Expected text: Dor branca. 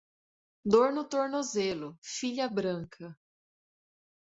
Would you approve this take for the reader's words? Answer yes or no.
no